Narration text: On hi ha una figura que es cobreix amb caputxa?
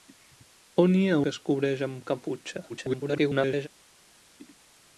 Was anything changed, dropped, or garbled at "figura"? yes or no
yes